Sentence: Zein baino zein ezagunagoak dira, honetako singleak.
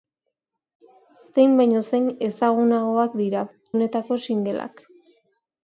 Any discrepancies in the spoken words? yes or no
no